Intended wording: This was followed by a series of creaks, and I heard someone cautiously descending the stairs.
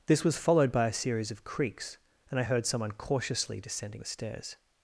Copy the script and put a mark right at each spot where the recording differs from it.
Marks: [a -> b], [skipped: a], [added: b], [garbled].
This was followed by a series of creaks, and I heard someone cautiously descending the stairs.